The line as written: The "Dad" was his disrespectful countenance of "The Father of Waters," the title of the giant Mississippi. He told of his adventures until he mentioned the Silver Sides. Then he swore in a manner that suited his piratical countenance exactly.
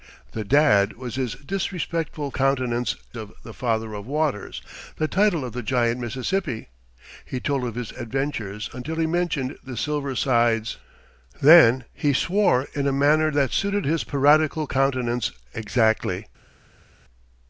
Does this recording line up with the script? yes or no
yes